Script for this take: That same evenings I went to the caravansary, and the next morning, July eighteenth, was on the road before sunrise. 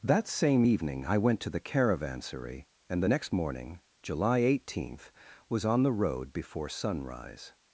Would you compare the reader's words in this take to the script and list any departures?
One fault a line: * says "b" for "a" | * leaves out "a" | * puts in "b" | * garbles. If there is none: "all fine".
* says "evening" for "evenings"